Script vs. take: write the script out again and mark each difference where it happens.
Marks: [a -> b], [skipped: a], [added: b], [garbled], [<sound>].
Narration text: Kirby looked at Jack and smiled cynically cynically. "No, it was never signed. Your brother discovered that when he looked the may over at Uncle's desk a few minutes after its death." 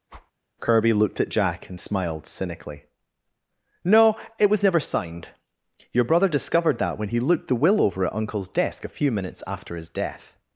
[whoosh] Kirby looked at Jack and smiled cynically [skipped: cynically.] "No, it was never signed. Your brother discovered that when he looked the [may -> will] over at Uncle's desk a few minutes after [its -> his] death."